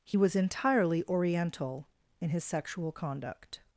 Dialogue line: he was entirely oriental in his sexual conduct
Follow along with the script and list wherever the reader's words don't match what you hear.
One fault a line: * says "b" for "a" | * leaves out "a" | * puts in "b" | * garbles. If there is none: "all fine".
all fine